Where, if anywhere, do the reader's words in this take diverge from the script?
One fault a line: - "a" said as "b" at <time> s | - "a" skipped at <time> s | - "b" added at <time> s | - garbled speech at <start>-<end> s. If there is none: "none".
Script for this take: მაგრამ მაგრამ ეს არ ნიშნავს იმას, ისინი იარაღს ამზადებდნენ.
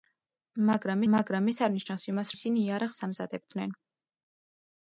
none